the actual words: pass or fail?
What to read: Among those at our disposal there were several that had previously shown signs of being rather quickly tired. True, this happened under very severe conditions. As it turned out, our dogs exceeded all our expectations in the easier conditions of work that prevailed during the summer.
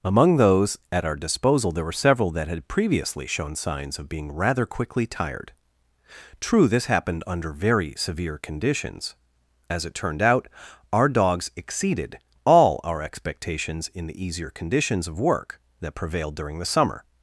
pass